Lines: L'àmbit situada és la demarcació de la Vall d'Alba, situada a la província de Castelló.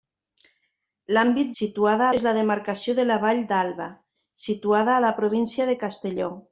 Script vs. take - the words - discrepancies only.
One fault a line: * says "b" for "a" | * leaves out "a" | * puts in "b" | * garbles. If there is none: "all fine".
all fine